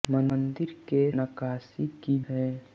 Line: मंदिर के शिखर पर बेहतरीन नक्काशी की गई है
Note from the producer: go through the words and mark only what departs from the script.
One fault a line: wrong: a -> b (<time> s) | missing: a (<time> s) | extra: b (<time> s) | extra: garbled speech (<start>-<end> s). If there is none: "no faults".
missing: शिखर पर बेहतरीन (1.1 s)
missing: गई (2.2 s)